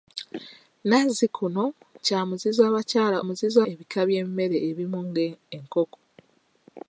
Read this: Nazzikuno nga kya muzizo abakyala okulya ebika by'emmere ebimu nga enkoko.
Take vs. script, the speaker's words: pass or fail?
fail